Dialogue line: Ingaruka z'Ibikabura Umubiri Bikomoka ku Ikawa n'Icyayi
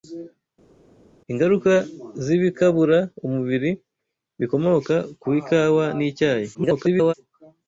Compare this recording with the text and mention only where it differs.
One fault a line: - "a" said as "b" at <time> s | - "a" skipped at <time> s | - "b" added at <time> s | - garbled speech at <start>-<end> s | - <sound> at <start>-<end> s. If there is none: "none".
- garbled speech at 6.5-7.1 s